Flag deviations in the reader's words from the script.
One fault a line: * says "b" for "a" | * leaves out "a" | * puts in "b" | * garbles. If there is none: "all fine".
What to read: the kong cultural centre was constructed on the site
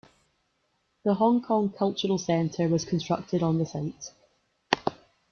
* puts in "hong"